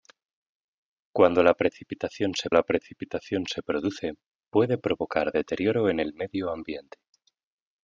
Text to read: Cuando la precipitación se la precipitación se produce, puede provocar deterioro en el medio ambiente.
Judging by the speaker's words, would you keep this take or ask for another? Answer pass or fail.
pass